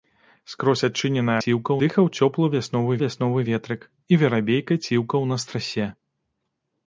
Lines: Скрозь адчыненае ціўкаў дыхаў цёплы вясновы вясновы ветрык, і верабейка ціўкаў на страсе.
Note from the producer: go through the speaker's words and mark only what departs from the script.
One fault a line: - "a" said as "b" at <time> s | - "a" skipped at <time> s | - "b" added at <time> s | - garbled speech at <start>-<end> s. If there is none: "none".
none